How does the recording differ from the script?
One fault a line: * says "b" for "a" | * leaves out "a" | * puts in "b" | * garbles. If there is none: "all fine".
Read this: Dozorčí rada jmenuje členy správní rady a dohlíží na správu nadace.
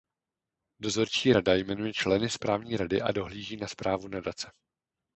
all fine